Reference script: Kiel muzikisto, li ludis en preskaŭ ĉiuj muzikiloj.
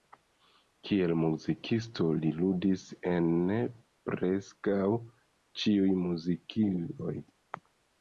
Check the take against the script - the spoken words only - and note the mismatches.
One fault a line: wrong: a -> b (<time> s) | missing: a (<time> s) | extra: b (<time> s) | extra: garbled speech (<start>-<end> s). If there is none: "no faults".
no faults